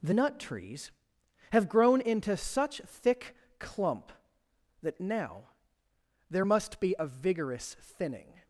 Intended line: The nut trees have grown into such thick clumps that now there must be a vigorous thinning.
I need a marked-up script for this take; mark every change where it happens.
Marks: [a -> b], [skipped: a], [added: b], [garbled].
The nut trees have grown into such thick [clumps -> clump] that now there must be a vigorous thinning.